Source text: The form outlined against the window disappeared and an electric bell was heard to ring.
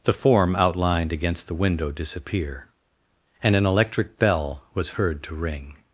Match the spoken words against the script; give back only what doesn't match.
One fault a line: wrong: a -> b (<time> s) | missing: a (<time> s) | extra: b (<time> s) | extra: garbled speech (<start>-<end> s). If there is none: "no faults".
wrong: disappeared -> disappear (1.9 s)